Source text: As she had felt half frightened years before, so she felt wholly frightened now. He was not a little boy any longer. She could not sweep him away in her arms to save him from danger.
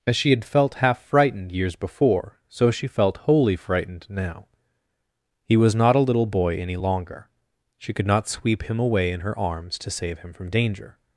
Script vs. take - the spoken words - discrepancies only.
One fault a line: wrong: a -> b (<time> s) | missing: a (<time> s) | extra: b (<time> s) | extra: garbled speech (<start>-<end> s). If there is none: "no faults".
no faults